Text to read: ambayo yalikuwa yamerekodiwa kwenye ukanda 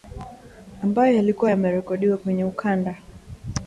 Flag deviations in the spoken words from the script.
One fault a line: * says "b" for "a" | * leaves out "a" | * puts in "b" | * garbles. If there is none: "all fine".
all fine